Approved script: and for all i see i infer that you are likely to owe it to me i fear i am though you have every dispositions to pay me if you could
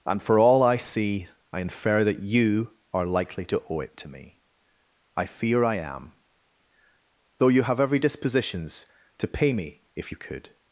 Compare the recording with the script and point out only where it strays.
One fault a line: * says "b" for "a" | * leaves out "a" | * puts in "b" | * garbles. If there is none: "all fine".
all fine